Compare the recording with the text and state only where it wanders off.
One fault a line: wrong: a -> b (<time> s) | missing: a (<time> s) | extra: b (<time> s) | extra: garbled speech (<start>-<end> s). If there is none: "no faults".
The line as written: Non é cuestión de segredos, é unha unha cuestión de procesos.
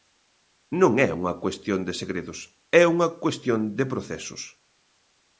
extra: unha (1.2 s)
missing: unha (3.1 s)